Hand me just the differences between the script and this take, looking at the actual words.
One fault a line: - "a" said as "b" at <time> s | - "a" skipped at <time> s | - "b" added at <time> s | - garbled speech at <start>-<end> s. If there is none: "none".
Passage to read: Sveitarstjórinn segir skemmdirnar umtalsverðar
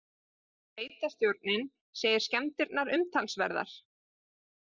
none